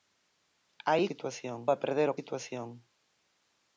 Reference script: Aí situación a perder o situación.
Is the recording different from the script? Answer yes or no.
no